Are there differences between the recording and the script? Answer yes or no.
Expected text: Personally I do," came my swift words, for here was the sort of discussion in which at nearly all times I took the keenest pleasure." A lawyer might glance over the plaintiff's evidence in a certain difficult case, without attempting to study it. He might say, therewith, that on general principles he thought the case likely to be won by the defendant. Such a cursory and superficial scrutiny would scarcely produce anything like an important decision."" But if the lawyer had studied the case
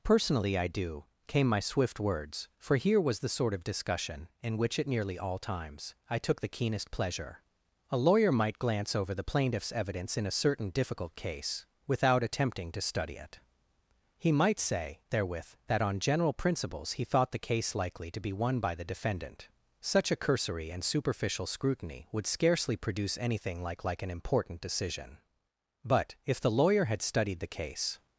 yes